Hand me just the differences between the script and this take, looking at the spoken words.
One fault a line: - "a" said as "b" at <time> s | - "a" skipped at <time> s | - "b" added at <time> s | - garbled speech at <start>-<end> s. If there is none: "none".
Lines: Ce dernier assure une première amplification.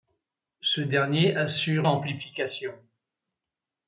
- "une première" skipped at 1.9 s